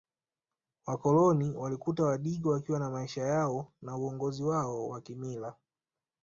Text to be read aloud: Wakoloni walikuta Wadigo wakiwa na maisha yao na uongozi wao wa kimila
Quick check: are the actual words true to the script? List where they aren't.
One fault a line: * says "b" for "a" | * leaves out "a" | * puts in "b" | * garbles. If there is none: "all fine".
all fine